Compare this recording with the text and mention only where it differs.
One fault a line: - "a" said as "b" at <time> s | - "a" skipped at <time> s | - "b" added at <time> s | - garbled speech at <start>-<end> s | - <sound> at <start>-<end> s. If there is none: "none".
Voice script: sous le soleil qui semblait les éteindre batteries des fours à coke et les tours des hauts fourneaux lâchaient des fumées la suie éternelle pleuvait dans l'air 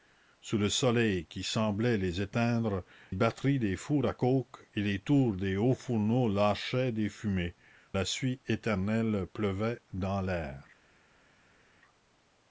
none